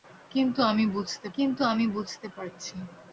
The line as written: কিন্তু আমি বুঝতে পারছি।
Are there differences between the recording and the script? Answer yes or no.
yes